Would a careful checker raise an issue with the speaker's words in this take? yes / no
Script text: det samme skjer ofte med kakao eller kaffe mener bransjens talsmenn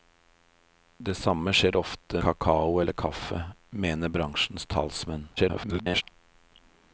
yes